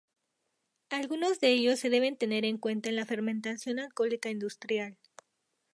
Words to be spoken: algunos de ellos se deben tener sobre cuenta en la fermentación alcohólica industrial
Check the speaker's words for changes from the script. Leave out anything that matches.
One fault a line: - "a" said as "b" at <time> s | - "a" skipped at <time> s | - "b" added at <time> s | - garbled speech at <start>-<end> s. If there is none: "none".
- "sobre" said as "en" at 2.4 s